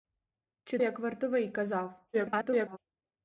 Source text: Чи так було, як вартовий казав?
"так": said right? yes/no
no